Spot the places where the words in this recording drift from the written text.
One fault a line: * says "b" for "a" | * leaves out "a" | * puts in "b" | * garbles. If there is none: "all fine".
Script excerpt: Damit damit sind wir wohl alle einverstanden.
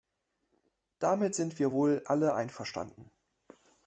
* leaves out "damit"